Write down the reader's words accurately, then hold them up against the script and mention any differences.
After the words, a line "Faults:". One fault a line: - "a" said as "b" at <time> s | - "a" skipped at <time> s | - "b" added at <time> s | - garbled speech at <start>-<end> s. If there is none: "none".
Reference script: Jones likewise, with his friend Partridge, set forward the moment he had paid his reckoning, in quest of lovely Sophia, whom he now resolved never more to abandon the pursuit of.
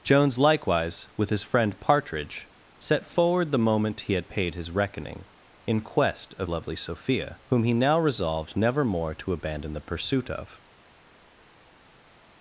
Jones likewise, with his friend Partridge, set forward the moment he had paid his reckoning, in quest of lovely Sophia, whom he now resolved never more to abandon the pursuit of.
Faults:
none